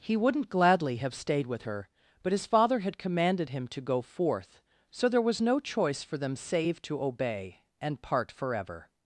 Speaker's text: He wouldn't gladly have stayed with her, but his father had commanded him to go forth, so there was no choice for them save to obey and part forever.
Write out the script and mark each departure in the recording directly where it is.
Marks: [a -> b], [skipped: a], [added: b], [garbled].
He wouldn't gladly have stayed with her, but his father had commanded him to go forth, so there was no choice for them save to obey and part forever.